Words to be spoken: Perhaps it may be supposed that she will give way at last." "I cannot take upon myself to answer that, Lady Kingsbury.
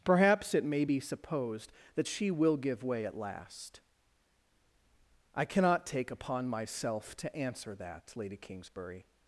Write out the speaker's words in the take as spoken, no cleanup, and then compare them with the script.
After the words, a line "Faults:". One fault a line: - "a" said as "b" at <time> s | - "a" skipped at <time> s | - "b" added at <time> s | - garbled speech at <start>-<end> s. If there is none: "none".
Perhaps it may be supposed that she will give way at last." "I cannot take upon myself to answer that, Lady Kingsbury.
Faults:
none